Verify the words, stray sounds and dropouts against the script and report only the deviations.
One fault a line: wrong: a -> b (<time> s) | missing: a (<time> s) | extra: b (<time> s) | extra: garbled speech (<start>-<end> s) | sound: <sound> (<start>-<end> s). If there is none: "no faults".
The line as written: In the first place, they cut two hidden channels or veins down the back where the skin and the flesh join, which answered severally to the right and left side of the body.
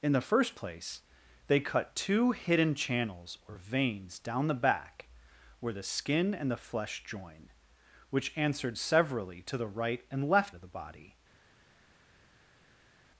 missing: side (10.6 s)